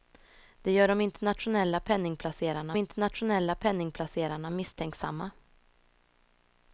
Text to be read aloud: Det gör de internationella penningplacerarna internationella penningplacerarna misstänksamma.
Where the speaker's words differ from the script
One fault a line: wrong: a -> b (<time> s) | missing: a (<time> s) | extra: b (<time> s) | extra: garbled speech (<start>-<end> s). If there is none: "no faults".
no faults